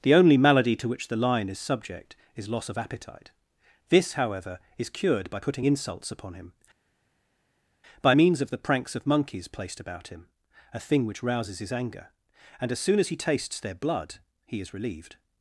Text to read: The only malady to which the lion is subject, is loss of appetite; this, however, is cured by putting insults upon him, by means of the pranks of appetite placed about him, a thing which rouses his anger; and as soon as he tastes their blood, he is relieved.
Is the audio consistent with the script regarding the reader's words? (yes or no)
no